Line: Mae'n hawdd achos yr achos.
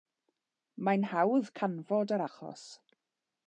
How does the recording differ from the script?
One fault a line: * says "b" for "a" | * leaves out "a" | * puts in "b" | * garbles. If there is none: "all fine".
* says "canfod" for "achos"